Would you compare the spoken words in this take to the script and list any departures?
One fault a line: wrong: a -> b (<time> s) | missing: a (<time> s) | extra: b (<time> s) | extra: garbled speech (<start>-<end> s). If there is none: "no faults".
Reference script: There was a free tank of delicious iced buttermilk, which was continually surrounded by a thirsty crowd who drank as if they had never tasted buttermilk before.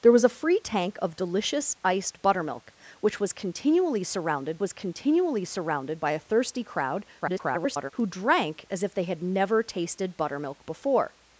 extra: was continually surrounded (4.6 s)
extra: garbled speech (7.2-7.9 s)